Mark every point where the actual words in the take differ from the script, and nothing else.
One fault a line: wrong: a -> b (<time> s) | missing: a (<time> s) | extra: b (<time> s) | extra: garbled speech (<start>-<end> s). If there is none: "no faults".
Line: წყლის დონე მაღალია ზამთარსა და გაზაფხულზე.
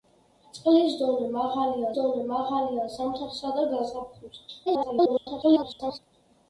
extra: დონე მაღალია (2.0 s)
extra: garbled speech (4.7-6.0 s)